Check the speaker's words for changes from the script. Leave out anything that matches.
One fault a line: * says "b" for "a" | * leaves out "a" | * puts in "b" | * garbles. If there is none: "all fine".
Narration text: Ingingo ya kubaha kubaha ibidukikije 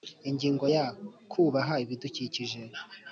* leaves out "kubaha"